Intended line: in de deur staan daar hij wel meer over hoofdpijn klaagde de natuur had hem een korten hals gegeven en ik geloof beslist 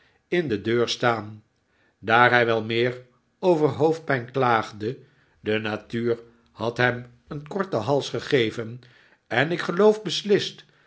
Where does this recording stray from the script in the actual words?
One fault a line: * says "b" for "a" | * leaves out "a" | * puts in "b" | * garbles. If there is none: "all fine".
all fine